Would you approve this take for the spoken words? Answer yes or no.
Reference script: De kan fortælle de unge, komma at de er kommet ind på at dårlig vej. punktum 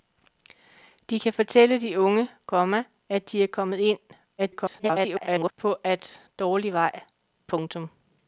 no